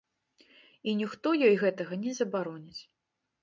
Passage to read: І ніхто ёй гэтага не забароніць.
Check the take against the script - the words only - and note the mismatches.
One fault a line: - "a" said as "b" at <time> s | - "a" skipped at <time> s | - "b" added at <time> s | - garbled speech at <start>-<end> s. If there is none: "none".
none